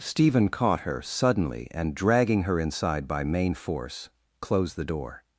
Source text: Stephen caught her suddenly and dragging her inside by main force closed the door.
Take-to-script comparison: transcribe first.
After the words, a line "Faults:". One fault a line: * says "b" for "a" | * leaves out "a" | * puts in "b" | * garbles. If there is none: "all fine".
Stephen caught her suddenly and dragging her inside by main force closed the door.
Faults:
all fine